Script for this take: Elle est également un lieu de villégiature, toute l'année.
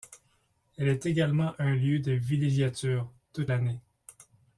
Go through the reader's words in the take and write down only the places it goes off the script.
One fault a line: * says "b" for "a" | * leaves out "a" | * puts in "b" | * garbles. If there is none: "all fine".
all fine